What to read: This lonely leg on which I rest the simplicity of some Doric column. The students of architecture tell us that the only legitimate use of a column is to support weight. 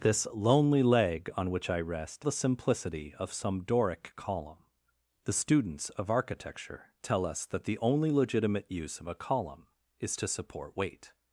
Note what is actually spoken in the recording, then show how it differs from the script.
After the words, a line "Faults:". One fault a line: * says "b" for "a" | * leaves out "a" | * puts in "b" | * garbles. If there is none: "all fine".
This lonely leg on which I rest the simplicity of some Doric column. The students of architecture tell us that the only legitimate use of a column is to support weight.
Faults:
all fine